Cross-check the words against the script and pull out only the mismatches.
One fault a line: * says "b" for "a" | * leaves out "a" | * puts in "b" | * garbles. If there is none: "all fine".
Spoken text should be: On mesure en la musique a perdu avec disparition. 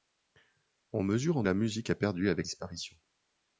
all fine